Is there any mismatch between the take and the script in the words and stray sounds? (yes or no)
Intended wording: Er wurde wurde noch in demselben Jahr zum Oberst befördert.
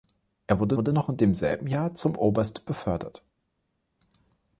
no